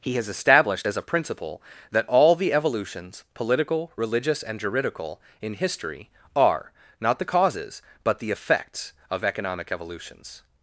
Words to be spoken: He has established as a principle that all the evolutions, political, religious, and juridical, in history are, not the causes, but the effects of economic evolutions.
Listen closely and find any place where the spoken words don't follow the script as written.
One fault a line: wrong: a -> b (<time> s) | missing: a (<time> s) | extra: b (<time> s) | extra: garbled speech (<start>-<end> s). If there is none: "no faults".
no faults